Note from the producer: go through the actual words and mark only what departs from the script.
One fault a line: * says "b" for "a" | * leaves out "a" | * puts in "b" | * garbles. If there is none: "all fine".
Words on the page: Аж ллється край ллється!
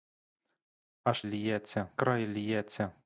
all fine